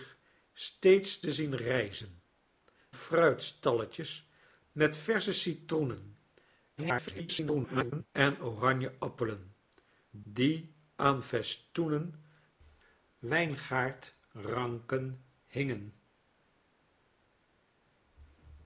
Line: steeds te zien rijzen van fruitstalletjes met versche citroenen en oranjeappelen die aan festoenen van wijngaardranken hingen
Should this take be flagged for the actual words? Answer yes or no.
yes